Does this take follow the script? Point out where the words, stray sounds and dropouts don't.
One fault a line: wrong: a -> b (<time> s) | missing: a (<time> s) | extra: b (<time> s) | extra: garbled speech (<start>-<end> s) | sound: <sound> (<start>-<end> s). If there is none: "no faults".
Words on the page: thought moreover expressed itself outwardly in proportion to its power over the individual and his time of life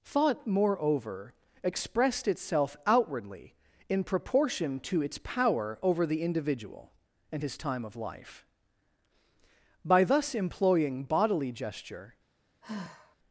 extra: by thus employing bodily gesture (9.8 s)
sound: sigh (12.6-13.2 s)